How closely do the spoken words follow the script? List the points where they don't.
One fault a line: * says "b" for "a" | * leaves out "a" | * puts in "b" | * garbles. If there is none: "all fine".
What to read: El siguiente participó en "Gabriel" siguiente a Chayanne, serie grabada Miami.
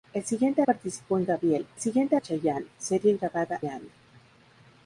all fine